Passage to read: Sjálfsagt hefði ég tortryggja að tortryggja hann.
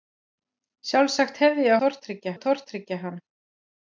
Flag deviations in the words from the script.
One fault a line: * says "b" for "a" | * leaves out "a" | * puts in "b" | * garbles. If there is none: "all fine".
all fine